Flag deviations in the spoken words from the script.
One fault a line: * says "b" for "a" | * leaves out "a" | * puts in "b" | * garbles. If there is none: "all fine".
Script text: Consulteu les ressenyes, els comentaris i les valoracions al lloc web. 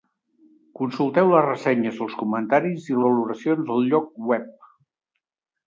* leaves out "les"